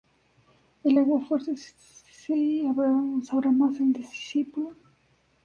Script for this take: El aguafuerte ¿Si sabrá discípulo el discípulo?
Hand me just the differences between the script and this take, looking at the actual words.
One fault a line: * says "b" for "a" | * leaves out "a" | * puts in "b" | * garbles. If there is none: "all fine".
* says "más" for "discípulo"